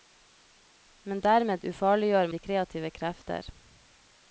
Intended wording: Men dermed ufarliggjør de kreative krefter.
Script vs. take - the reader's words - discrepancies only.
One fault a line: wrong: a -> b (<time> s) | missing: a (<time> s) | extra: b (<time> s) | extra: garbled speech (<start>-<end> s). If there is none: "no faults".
no faults